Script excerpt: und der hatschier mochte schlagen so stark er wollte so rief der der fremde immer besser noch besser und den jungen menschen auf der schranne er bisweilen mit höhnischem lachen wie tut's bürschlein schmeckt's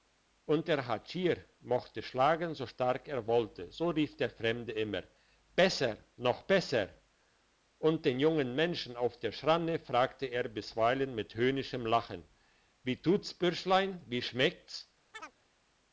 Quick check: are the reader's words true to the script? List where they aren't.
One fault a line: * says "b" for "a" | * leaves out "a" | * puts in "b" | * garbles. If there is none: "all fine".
* leaves out "der"
* puts in "fragte"
* puts in "wie"